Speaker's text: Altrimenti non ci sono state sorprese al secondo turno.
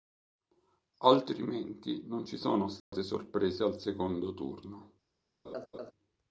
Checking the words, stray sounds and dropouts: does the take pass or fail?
fail